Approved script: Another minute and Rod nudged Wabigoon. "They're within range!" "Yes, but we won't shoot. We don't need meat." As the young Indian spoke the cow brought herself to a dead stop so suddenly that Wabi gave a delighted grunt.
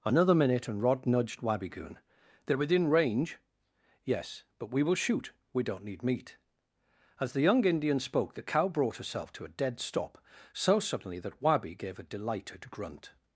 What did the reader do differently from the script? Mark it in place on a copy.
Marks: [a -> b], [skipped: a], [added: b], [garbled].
Another minute and Rod nudged Wabigoon. "They're within range!" "Yes, but we [won't -> will] shoot. We don't need meat." As the young Indian spoke the cow brought herself to a dead stop so suddenly that Wabi gave a delighted grunt.